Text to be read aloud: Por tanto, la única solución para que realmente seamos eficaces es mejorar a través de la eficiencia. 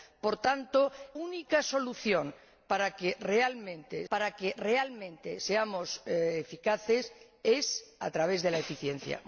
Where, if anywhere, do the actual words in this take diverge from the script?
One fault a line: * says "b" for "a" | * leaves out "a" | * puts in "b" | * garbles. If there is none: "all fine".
* leaves out "la"
* puts in "para que realmente"
* leaves out "mejorar"